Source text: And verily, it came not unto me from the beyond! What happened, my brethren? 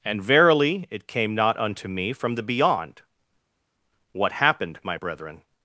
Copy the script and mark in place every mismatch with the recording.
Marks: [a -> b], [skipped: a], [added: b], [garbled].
And verily, it came not unto me from the beyond! What happened, my brethren?